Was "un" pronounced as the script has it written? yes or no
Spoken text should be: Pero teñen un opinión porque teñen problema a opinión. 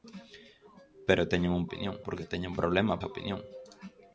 yes